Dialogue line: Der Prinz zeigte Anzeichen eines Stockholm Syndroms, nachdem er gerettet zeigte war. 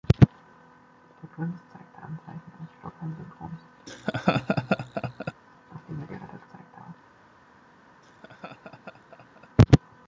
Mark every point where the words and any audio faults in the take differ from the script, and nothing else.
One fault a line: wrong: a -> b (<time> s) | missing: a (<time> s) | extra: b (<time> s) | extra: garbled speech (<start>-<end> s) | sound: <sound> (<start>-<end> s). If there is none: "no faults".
sound: laugh (3.9-5.3 s)
sound: laugh (8.0-9.5 s)